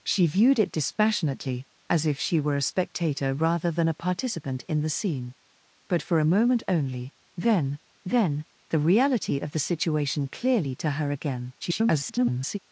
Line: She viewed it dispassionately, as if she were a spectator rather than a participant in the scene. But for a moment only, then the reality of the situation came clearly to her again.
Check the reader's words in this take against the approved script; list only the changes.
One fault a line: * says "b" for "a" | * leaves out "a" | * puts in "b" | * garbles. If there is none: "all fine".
* puts in "then"
* leaves out "came"
* garbles